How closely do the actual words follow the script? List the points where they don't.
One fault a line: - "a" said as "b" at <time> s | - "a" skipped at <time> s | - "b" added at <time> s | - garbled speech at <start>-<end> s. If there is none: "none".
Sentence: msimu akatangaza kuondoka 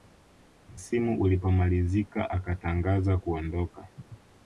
- "ulipomalizika" added at 1.2 s